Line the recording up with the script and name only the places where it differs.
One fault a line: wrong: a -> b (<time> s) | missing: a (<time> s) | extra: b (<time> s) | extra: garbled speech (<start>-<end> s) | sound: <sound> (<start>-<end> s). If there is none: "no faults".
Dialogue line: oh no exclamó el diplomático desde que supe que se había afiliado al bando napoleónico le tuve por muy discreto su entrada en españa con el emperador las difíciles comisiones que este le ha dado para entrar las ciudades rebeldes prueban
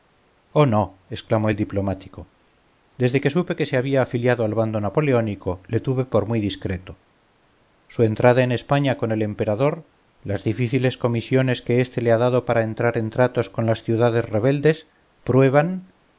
extra: en tratos con (13.0 s)